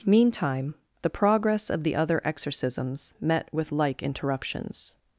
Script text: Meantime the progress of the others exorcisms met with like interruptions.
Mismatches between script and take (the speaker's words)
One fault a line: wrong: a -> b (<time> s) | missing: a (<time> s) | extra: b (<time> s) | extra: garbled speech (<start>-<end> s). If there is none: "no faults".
wrong: others -> other (1.9 s)